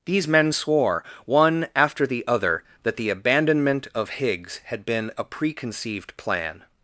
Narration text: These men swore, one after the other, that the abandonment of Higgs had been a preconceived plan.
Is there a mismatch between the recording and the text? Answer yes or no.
no